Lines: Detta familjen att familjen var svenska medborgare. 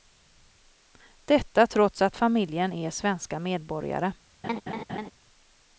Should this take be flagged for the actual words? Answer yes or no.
yes